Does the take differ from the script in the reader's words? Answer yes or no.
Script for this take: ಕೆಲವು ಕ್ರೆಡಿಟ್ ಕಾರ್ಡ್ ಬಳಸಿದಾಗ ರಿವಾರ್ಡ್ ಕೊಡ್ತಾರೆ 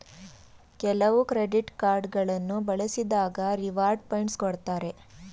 yes